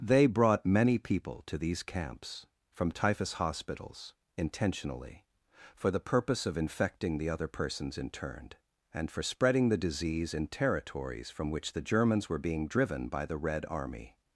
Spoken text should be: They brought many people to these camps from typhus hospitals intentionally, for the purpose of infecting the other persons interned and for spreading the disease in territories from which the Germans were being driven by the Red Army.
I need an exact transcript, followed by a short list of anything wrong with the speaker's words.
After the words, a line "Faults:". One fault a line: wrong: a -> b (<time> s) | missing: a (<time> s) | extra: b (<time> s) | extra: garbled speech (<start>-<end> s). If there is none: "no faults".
They brought many people to these camps from typhus hospitals intentionally, for the purpose of infecting the other persons interned and for spreading the disease in territories from which the Germans were being driven by the Red Army.
Faults:
no faults